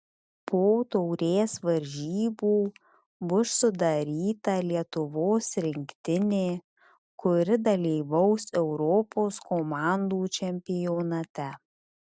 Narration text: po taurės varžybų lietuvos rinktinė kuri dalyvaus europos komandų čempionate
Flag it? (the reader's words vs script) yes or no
yes